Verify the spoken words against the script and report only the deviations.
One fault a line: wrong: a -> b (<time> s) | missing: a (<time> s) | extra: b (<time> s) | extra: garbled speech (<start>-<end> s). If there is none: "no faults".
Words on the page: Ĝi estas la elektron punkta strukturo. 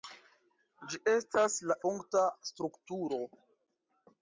missing: elektron (1.8 s)